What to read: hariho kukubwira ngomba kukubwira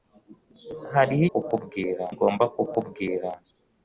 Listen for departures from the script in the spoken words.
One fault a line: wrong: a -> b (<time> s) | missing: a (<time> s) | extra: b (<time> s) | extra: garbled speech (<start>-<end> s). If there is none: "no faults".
no faults